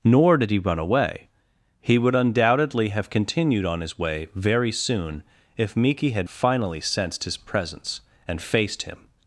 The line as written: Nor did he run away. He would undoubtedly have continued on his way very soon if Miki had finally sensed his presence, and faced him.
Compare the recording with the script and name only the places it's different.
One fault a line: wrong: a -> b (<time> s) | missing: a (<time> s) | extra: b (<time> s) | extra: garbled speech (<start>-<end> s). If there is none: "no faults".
no faults